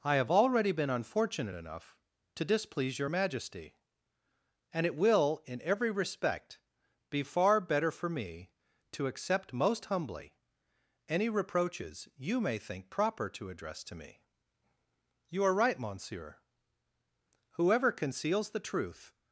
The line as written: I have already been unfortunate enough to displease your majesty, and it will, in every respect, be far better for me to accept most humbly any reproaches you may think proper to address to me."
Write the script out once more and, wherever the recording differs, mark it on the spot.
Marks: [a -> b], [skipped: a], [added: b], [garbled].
I have already been unfortunate enough to displease your majesty, and it will, in every respect, be far better for me to accept most humbly any reproaches you may think proper to address to me." [added: You are right monsieur whoever conceals the truth]